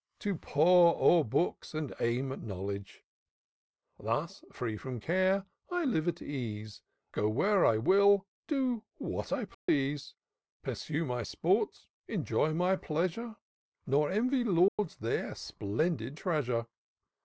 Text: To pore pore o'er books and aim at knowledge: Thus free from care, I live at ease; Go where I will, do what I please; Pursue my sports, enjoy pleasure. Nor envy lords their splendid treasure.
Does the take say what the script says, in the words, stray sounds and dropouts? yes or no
no